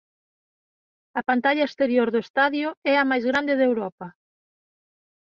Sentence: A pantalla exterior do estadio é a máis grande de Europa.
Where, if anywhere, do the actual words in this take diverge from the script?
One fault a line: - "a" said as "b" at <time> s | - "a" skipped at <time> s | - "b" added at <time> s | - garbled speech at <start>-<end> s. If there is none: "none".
none